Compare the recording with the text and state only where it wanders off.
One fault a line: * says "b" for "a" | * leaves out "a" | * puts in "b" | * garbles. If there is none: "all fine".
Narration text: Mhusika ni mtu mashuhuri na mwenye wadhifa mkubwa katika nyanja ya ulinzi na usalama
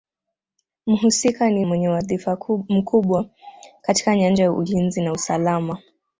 * leaves out "mtu mashuhuri na"